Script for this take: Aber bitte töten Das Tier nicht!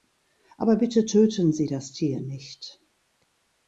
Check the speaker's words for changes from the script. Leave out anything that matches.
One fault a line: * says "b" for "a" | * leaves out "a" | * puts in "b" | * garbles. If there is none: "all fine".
* puts in "Sie"